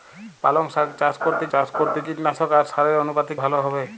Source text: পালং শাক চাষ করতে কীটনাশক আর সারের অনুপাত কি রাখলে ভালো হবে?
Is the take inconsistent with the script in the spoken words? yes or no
yes